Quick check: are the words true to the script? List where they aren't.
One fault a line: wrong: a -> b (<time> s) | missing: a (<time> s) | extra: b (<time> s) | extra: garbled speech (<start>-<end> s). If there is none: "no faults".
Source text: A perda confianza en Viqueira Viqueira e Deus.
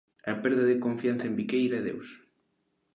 extra: de (0.7 s)
missing: Viqueira (1.8 s)